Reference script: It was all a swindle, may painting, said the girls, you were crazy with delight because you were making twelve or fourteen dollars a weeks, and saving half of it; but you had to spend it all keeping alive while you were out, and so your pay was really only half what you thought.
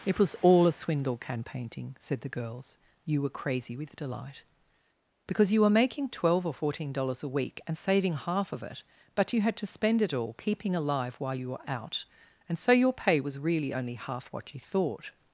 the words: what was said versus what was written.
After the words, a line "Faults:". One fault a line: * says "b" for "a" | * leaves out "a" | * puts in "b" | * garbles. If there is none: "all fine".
It was all a swindle, can painting, said the girls, you were crazy with delight because you were making twelve or fourteen dollars a week, and saving half of it; but you had to spend it all keeping alive while you were out, and so your pay was really only half what you thought.
Faults:
* says "can" for "may"
* says "week" for "weeks"